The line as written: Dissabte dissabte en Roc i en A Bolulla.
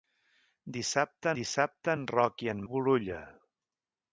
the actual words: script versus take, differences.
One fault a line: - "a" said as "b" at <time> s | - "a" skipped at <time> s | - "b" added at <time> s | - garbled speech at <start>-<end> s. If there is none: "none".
none